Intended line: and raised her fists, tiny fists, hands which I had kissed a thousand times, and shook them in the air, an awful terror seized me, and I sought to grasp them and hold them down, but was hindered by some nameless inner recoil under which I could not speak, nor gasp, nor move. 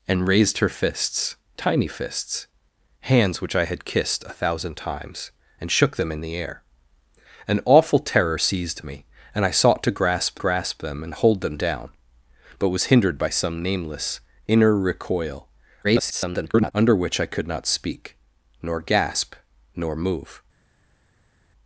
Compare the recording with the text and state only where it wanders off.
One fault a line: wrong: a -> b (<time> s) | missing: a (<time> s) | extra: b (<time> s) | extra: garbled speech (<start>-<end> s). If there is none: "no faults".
extra: grasp (10.4 s)
extra: garbled speech (15.8-16.7 s)